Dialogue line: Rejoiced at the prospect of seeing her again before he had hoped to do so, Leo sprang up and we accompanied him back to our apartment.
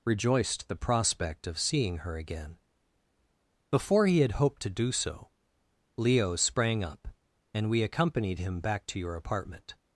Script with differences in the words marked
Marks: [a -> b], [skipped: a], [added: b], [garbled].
Rejoiced [skipped: at] the prospect of seeing her again before he had hoped to do so, Leo sprang up and we accompanied him back to [our -> your] apartment.